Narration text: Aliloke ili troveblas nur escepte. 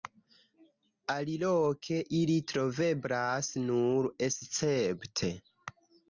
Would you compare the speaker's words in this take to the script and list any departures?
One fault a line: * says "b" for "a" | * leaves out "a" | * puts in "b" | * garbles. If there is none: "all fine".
all fine